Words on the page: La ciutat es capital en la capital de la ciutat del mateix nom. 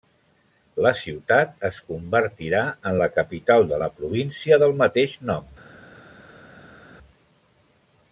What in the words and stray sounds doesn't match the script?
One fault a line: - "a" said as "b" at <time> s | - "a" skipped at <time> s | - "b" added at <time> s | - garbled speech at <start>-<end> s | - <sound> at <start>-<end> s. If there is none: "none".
- "capital" said as "convertirà" at 1.9 s
- "ciutat" said as "província" at 4.0 s